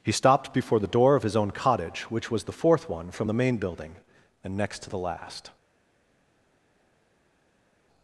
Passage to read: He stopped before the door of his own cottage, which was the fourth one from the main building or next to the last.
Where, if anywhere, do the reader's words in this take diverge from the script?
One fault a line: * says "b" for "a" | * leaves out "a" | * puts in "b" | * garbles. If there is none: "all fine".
* says "and" for "or"